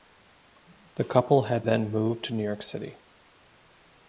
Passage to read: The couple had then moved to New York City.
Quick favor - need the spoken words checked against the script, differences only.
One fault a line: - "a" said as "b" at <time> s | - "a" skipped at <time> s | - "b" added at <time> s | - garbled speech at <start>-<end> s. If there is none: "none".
none